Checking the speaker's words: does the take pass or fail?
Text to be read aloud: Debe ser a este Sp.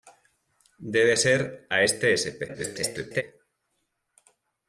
fail